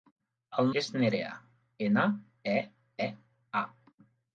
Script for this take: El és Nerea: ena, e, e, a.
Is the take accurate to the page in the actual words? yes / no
yes